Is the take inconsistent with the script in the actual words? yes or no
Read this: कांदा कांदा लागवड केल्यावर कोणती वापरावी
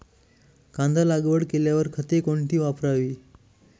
yes